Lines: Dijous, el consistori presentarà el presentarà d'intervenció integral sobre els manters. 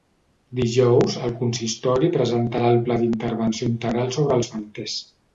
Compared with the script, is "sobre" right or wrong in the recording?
right